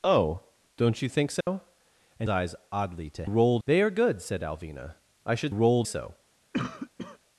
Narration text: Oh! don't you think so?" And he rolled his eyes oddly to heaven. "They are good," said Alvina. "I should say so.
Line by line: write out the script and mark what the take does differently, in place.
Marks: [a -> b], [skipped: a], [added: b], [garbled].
Oh! don't you think so?" And [skipped: he rolled his] eyes oddly to [heaven. -> rolled] "They are good," said Alvina. "I should [say -> rolled] so.